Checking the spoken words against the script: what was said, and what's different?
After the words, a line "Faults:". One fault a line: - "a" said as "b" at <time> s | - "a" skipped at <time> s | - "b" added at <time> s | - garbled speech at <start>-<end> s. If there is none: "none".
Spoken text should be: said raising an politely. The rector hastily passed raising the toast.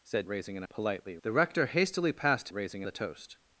said raising an politely. The rector hastily passed raising the toast.
Faults:
none